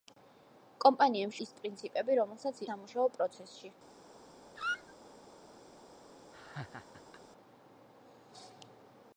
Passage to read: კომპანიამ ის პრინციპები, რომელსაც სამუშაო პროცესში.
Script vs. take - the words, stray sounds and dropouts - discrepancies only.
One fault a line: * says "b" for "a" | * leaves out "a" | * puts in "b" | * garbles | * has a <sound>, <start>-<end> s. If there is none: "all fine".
* has a squeak, 4.6-4.9 s
* has a laugh, 6.3-7.2 s